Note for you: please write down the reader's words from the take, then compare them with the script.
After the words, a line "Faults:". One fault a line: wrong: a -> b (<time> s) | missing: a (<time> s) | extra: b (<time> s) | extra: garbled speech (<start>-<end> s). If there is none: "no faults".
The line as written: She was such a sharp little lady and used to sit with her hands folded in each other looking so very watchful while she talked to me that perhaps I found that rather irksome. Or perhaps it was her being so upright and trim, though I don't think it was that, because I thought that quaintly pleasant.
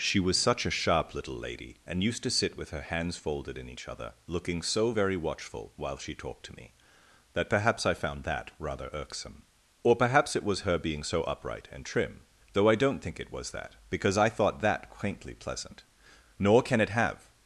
She was such a sharp little lady and used to sit with her hands folded in each other looking so very watchful while she talked to me that perhaps I found that rather irksome. Or perhaps it was her being so upright and trim, though I don't think it was that, because I thought that quaintly pleasant. Nor can it have
Faults:
extra: Nor can it have (16.4 s)